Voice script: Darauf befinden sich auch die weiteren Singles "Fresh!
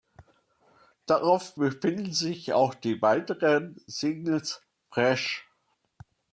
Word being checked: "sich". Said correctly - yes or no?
yes